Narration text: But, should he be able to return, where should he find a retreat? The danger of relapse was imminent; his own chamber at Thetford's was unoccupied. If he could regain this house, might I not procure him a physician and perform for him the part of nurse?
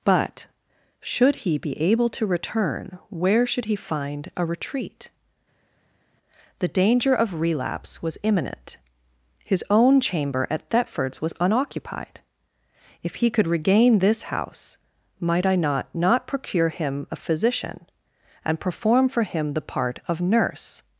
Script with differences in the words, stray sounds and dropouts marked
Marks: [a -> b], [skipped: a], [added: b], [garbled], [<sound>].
But, should he be able to return, where should he find a retreat? The danger of relapse was imminent; his own chamber at Thetford's was unoccupied. If he could regain this house, might I not [added: not] procure him a physician and perform for him the part of nurse?